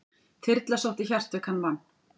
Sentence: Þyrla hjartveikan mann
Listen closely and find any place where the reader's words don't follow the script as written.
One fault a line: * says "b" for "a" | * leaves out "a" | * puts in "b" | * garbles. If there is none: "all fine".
* puts in "sótti"